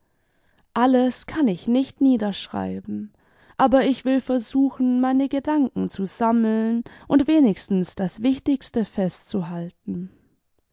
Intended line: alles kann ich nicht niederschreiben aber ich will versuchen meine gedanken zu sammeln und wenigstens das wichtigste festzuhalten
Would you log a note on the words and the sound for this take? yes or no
no